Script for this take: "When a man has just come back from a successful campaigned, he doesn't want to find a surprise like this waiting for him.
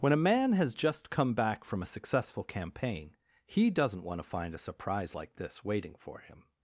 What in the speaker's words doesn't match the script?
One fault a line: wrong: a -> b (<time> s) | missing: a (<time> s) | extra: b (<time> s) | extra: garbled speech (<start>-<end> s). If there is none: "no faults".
wrong: campaigned -> campaign (2.4 s)